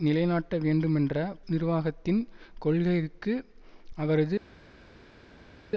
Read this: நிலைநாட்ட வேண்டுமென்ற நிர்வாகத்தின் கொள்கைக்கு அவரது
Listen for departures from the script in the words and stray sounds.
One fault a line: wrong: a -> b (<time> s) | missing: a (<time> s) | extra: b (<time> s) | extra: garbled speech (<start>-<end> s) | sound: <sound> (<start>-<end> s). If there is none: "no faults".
no faults